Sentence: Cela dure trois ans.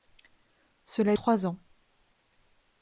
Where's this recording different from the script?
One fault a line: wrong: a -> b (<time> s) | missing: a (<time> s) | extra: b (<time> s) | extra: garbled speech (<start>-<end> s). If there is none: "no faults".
missing: dure (1.1 s)